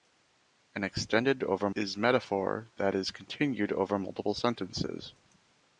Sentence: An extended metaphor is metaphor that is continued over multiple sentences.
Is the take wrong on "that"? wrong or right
right